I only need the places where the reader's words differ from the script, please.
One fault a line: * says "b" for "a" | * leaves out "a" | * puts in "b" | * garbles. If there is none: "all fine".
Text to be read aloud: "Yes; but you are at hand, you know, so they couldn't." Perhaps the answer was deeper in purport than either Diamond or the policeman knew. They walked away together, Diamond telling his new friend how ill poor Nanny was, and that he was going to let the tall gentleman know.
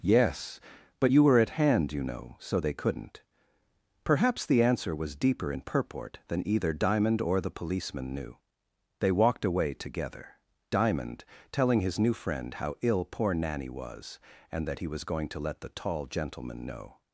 * says "were" for "are"